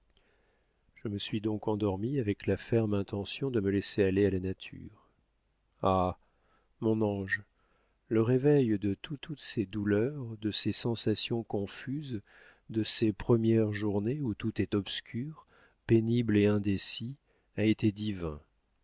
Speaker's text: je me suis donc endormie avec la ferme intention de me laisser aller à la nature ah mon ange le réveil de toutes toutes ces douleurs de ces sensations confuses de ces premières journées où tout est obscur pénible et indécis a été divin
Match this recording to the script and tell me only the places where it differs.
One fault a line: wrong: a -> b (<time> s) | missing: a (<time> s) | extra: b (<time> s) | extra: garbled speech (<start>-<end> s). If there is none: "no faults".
no faults